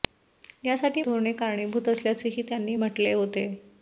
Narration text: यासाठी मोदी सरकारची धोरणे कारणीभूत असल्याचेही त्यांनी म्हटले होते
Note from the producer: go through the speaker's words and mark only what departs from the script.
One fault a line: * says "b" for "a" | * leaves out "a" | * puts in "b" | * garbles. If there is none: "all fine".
* leaves out "मोदी सरकारची"